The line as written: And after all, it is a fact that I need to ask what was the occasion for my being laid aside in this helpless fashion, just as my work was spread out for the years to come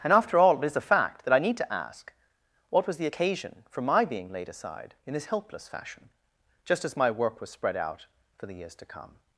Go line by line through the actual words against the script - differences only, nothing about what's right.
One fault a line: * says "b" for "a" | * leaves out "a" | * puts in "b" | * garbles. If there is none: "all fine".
all fine